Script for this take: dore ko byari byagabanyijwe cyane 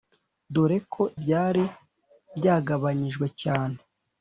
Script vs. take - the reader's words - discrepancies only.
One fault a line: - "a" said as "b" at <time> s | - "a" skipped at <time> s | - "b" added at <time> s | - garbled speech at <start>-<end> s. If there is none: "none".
none